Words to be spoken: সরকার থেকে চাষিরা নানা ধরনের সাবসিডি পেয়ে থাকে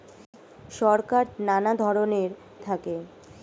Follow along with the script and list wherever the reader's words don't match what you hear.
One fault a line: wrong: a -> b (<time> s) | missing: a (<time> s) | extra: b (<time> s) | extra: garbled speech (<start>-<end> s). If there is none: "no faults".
missing: থেকে চাষিরা (1.2 s)
missing: সাবসিডি পেয়ে (2.3 s)